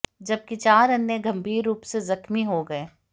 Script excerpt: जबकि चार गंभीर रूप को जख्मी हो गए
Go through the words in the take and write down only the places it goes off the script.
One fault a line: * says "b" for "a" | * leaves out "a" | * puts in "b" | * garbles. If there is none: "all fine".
* puts in "अन्य"
* says "से" for "को"